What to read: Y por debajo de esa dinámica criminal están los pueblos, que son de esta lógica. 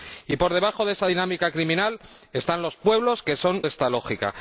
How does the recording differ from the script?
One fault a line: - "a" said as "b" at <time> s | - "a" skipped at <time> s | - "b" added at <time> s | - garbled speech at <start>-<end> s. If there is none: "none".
none